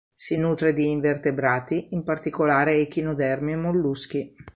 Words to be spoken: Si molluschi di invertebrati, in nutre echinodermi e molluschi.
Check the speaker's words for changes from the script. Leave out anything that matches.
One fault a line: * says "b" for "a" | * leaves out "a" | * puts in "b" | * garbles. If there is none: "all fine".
* says "nutre" for "molluschi"
* says "particolare" for "nutre"